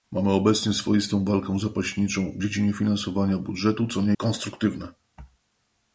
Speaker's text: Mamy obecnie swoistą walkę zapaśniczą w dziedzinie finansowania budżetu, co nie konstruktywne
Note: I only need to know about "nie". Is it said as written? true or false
true